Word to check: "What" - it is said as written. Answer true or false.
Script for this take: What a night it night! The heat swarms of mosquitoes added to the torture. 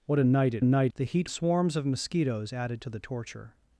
true